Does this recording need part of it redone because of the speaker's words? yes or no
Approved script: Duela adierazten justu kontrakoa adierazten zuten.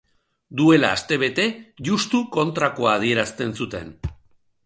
yes